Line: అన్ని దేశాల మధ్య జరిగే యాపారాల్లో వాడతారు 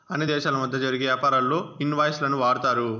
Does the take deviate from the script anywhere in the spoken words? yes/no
yes